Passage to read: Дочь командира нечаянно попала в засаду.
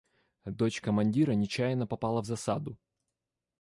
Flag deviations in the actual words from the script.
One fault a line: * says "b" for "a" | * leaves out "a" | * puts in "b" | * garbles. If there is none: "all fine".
all fine